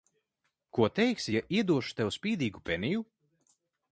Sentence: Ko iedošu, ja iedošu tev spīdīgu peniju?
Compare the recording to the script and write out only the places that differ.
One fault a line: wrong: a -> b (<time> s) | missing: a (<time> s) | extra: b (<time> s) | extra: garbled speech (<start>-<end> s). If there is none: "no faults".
wrong: iedošu -> teiksi (1.0 s)